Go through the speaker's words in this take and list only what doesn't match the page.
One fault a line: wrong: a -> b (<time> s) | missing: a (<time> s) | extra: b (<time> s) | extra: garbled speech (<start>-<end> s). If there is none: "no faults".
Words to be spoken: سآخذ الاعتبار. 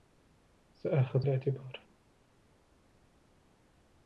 no faults